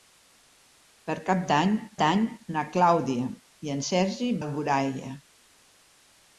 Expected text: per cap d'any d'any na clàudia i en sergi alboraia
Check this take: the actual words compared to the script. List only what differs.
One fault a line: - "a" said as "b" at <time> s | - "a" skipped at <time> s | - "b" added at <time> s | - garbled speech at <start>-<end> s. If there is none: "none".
none